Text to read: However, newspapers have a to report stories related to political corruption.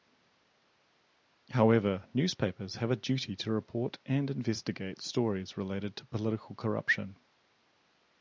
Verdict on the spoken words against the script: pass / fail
fail